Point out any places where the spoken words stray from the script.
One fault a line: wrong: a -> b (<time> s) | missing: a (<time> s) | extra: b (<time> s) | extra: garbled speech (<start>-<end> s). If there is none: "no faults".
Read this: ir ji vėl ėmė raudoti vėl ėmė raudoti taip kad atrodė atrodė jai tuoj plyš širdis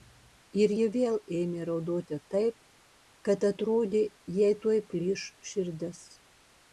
missing: vėl ėmė raudoti (2.2 s)
missing: atrodė (4.0 s)